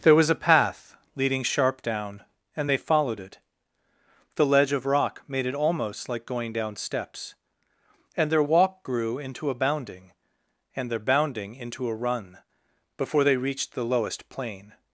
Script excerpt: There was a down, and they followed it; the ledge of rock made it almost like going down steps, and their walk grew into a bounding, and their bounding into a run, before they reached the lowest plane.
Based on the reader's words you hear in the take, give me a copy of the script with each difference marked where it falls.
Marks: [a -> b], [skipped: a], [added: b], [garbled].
There was a [added: path leading sharp] down, and they followed it; the ledge of rock made it almost like going down steps, and their walk grew into a bounding, and their bounding into a run, before they reached the lowest plane.